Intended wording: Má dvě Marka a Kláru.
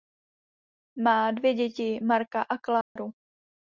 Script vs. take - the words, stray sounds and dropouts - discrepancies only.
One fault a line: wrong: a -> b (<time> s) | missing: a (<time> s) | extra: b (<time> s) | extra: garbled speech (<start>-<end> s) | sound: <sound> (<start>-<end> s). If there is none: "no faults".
extra: děti (1.5 s)
sound: dropout (2.8-3.0 s)